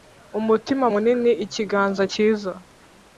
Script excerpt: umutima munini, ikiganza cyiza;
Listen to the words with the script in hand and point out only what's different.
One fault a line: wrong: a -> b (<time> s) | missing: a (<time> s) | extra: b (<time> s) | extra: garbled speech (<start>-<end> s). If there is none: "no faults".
no faults